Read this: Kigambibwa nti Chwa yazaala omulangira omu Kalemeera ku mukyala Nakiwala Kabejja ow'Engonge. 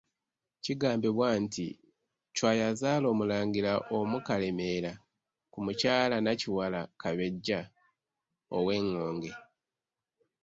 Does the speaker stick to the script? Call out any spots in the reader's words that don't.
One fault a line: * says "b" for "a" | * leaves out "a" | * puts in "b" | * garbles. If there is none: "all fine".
all fine